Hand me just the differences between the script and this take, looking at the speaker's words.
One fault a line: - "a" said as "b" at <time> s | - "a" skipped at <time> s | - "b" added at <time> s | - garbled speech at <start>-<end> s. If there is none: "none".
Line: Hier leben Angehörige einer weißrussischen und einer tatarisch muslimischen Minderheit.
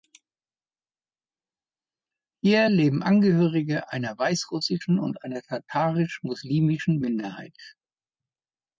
none